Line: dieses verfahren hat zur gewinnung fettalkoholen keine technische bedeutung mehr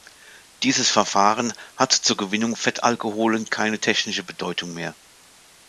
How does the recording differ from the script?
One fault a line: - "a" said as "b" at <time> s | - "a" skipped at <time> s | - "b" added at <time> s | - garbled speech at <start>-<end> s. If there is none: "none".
none